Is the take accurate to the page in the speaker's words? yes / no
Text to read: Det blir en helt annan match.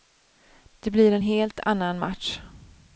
yes